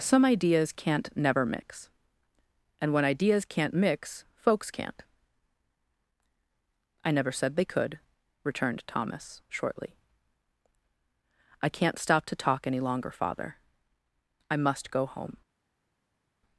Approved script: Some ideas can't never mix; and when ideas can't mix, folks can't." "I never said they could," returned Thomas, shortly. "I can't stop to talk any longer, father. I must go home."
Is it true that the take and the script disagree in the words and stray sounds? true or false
false